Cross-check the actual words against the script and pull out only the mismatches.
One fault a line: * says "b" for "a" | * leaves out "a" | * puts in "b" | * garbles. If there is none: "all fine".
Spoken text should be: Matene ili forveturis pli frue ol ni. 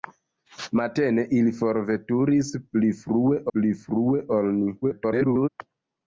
* puts in "pli frue"
* garbles